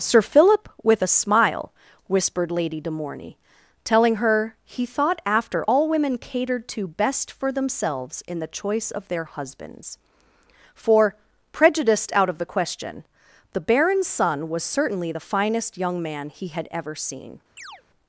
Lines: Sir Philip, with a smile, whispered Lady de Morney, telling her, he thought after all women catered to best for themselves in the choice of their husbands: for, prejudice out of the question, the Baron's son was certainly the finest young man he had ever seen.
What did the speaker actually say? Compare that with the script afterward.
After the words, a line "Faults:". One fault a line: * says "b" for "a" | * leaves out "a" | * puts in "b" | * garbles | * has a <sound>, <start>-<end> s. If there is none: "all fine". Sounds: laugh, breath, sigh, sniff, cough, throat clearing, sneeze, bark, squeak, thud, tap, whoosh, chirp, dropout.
Sir Philip, with a smile, whispered Lady de Morney, telling her, he thought after all women catered to best for themselves in the choice of their husbands: for, prejudiced out of the question, the Baron's son was certainly the finest young man he had ever seen.
Faults:
* says "prejudiced" for "prejudice"
* has a chirp, 17.6-17.8 s